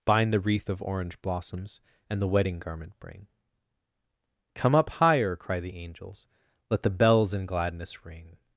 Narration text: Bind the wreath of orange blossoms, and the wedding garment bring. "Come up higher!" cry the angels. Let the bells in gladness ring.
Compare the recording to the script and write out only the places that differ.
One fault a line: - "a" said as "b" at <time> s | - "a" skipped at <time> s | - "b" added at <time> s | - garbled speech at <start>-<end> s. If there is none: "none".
none